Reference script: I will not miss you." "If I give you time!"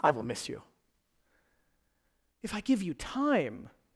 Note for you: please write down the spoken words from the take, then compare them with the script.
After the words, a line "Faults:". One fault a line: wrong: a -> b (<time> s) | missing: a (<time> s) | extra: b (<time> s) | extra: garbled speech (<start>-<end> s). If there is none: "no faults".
I will miss you." "If I give you time!"
Faults:
missing: not (0.2 s)